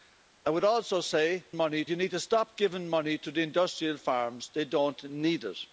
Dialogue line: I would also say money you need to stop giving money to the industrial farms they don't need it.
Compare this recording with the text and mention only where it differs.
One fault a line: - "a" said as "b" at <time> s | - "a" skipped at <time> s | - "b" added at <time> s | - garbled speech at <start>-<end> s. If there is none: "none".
none